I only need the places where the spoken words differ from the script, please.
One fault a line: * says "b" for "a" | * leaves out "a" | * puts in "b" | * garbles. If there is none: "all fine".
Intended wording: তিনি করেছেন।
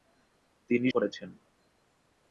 all fine